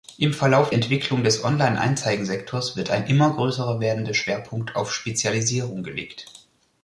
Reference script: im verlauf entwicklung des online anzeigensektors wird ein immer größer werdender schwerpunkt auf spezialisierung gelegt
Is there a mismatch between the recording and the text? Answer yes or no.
no